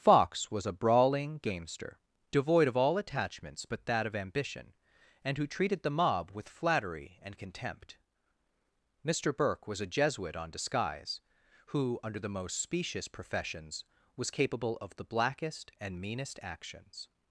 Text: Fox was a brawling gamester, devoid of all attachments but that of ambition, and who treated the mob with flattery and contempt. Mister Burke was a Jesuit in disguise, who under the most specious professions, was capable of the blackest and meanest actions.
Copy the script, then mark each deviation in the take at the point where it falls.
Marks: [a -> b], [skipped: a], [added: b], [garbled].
Fox was a brawling gamester, devoid of all attachments but that of ambition, and who treated the mob with flattery and contempt. Mister Burke was a Jesuit [in -> on] disguise, who under the most specious professions, was capable of the blackest and meanest actions.